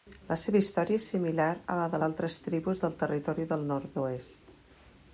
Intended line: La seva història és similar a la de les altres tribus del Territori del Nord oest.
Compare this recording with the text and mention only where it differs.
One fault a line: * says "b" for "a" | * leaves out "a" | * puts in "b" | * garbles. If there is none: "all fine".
* leaves out "les"